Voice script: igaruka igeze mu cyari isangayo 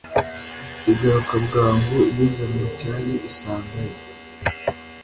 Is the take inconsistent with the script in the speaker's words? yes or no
yes